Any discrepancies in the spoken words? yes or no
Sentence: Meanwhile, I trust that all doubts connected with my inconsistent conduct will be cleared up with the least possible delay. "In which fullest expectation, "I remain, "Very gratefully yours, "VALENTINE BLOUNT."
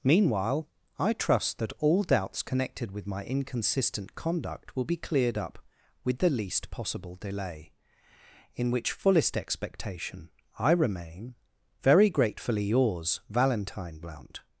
no